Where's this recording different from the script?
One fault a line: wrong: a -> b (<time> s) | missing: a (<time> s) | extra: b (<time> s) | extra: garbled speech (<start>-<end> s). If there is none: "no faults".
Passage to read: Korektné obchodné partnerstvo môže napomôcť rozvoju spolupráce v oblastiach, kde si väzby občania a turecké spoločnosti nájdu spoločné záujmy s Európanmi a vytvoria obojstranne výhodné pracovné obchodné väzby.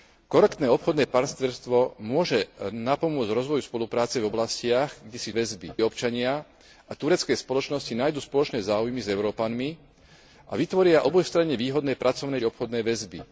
no faults